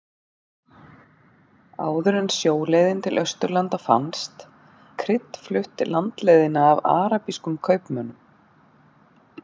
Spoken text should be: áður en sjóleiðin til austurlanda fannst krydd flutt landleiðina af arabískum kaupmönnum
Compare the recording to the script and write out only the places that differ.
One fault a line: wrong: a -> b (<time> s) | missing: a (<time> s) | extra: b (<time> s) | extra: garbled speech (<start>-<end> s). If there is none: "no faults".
no faults